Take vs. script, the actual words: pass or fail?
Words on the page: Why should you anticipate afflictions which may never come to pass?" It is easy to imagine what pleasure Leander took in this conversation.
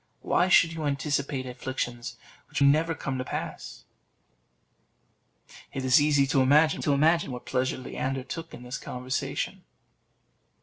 fail